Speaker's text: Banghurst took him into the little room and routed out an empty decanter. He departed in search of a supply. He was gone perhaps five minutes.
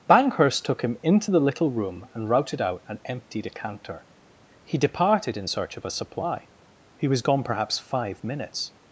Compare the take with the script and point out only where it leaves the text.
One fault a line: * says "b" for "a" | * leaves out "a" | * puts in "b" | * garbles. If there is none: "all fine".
all fine